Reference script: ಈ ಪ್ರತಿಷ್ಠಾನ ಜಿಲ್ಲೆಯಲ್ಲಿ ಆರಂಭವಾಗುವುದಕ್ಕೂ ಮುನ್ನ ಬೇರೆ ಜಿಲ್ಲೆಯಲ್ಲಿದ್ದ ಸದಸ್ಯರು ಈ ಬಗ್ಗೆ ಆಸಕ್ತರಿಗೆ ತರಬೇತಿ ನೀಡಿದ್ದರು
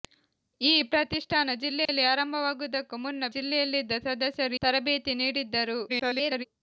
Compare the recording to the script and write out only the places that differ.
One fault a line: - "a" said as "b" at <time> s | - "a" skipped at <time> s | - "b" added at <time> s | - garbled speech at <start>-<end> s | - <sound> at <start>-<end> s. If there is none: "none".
- dropout at 1.9-1.9 s
- "ಬೇರೆ" skipped at 3.3 s
- "ಈ ಬಗ್ಗೆ ಆಸಕ್ತರಿಗೆ" skipped at 4.6 s
- garbled speech at 5.9-6.4 s